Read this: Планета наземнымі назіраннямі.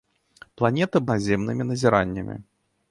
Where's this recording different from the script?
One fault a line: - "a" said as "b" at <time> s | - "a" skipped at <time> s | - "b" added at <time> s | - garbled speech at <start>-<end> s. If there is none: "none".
none